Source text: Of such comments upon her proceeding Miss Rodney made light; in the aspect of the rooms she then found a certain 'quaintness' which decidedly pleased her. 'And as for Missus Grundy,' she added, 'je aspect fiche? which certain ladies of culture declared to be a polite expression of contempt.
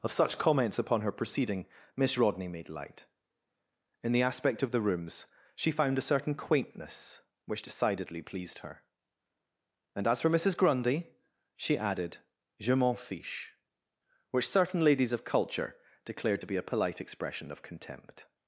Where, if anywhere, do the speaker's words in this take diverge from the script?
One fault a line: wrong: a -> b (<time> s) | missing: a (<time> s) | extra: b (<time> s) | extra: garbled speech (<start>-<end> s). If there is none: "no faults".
missing: then (5.7 s)
wrong: aspect -> m'en (12.7 s)